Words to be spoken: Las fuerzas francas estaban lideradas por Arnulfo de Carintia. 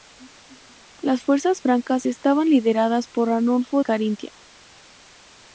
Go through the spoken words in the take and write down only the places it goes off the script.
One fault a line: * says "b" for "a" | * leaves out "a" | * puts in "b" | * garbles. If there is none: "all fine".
* leaves out "de"